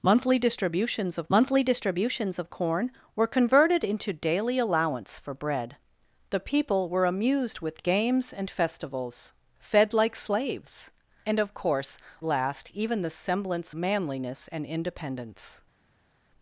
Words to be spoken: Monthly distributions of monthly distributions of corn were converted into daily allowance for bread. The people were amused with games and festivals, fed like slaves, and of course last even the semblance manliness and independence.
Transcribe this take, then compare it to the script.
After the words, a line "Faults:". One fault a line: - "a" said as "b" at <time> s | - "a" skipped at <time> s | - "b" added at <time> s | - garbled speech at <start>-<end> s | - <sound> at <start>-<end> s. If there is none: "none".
Monthly distributions of monthly distributions of corn were converted into daily allowance for bread. The people were amused with games and festivals, fed like slaves, and of course last even the semblance manliness and independence.
Faults:
none